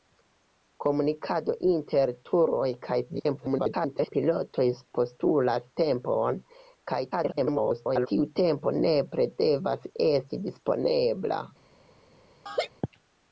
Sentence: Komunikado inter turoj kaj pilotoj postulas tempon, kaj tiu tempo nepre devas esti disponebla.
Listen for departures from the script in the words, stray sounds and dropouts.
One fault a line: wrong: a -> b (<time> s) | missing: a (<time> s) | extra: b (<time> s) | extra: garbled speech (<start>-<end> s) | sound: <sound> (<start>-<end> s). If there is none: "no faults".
extra: garbled speech (3.1-4.1 s)
extra: garbled speech (7.1-8.1 s)
sound: laugh (12.5-12.7 s)